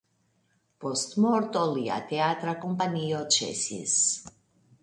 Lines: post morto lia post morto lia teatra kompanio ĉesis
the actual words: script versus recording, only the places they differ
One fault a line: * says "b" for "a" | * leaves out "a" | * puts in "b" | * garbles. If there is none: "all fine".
* leaves out "post morto lia"